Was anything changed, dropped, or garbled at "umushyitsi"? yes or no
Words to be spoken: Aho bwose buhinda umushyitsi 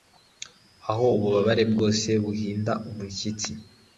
no